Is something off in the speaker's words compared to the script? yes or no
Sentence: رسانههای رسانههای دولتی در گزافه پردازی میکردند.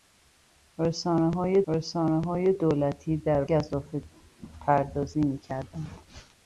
no